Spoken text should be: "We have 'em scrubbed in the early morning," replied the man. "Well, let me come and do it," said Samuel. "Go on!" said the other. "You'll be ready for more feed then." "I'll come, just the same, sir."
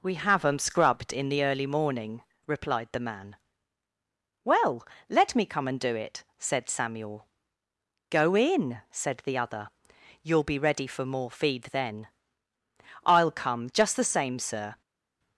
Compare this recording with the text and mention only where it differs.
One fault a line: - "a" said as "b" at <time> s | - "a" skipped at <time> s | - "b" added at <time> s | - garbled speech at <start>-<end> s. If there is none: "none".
- "on" said as "in" at 8.3 s